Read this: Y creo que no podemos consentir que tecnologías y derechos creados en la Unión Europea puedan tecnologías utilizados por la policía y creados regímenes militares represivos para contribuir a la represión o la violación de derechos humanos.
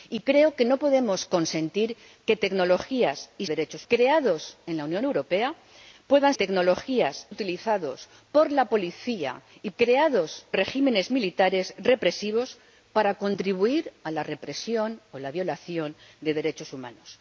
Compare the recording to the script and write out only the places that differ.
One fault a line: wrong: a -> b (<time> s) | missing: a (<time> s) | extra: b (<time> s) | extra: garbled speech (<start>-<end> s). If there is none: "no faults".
no faults